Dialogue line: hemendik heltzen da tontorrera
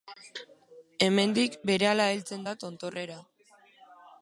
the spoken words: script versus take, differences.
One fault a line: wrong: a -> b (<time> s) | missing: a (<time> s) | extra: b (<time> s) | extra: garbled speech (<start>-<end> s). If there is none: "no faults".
extra: berehala (1.7 s)